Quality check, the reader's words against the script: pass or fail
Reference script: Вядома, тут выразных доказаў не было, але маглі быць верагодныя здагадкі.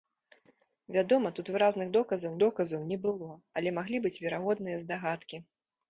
fail